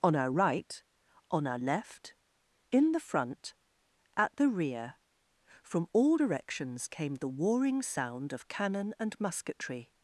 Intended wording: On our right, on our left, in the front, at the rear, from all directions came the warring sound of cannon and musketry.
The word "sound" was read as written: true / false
true